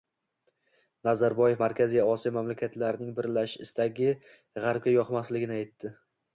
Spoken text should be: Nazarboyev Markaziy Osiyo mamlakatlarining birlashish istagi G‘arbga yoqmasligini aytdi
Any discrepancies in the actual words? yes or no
no